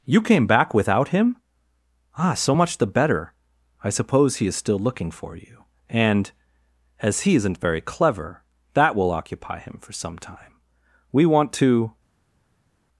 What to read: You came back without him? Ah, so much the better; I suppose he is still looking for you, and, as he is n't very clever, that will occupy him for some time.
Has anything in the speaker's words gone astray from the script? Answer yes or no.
yes